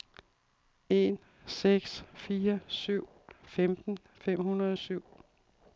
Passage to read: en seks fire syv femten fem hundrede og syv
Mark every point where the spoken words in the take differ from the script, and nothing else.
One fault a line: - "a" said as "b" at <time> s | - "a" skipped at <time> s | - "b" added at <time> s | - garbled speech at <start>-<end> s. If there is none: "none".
none